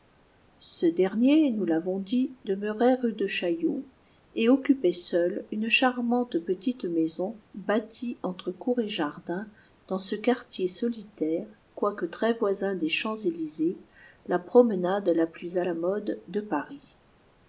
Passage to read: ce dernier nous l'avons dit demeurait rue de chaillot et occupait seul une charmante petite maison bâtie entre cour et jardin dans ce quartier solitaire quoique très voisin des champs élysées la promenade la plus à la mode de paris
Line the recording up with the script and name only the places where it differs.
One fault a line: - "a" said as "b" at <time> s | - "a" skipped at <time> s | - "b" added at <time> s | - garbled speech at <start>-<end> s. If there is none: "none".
none